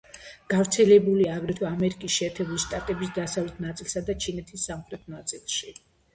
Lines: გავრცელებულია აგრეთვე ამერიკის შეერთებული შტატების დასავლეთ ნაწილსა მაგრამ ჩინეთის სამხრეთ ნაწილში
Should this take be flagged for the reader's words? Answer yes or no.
yes